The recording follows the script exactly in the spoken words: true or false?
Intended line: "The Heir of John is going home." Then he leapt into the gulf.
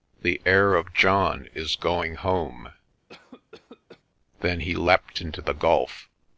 true